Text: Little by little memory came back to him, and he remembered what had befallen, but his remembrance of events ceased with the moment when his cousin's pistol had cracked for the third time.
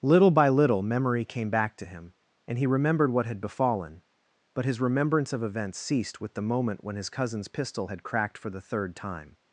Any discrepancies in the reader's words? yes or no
no